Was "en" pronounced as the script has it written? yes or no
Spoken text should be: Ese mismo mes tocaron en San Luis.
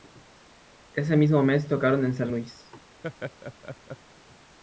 yes